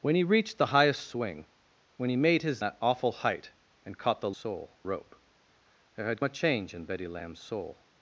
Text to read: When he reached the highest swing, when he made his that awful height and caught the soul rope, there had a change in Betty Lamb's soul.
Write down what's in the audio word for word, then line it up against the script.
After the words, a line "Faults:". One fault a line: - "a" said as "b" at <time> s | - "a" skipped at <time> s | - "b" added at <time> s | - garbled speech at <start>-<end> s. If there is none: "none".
When he reached the highest swing, when he made his that awful height and caught the soul rope, there had a change in Betty Lamb's soul.
Faults:
none